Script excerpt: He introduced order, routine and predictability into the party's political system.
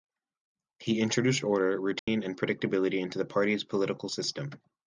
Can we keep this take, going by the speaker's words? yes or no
yes